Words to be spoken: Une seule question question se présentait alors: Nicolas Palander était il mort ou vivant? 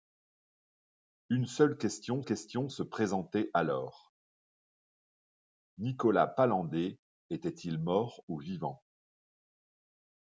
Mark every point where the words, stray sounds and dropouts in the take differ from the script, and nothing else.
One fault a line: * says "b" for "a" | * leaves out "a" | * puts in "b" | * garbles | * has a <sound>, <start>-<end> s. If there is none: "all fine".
all fine